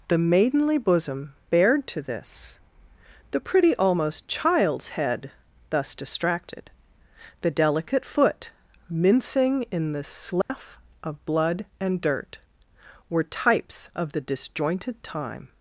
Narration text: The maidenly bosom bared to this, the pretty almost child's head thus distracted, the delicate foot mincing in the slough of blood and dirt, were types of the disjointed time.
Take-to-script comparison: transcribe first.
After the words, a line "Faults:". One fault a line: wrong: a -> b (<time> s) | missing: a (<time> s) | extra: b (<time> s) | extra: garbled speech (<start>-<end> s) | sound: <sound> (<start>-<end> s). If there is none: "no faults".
The maidenly bosom bared to this, the pretty almost child's head thus distracted, the delicate foot mincing in the slough of blood and dirt, were types of the disjointed time.
Faults:
sound: dropout (10.4-10.5 s)